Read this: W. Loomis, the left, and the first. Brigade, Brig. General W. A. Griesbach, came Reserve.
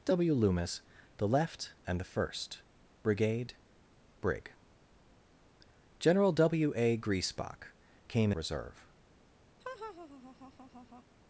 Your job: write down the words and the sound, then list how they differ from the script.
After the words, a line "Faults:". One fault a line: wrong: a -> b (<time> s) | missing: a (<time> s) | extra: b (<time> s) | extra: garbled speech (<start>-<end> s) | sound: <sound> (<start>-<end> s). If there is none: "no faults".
W. Loomis, the left, and the first. Brigade, Brig. General W. A. Griesbach, came Reserve.
Faults:
sound: laugh (9.6-11.0 s)